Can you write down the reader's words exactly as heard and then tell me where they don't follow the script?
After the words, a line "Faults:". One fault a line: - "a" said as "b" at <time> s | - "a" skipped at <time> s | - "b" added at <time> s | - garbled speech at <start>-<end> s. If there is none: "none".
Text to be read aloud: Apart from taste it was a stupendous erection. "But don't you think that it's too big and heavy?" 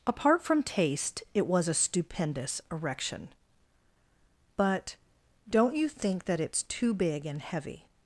Apart from taste it was a stupendous erection. "But don't you think that it's too big and heavy?"
Faults:
none